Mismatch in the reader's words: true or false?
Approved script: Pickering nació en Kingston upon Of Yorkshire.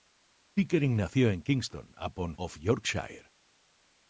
false